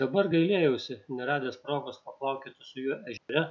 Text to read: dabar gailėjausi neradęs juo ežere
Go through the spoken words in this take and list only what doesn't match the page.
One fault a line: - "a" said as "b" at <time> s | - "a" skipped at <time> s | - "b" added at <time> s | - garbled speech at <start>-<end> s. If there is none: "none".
- "progos paplaukioti su" added at 1.6 s